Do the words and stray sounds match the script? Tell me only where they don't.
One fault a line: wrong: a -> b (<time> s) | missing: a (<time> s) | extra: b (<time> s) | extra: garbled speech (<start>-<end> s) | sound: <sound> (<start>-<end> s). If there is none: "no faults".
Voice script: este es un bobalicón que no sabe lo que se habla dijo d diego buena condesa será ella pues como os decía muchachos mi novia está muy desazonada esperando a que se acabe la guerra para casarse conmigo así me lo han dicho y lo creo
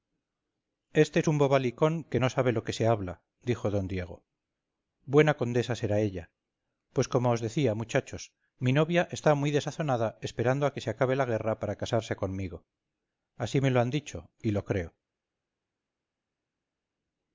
no faults